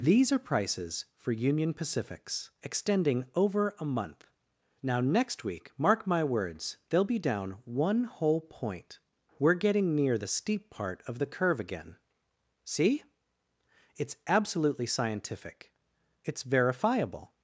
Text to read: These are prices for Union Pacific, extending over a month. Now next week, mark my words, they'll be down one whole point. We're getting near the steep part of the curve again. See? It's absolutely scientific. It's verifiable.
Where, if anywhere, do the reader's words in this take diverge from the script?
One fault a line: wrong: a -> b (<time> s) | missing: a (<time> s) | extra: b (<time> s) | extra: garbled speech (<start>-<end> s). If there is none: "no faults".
wrong: Pacific -> Pacifics (1.8 s)